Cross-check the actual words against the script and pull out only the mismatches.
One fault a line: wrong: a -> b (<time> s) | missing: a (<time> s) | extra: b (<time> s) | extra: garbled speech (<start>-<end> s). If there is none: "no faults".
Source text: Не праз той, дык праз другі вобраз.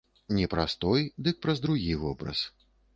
no faults